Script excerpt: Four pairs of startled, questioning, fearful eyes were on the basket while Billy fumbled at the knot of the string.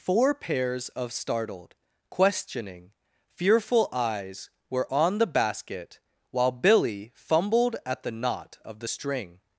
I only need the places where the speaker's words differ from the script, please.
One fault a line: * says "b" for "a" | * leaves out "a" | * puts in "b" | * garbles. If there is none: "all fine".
all fine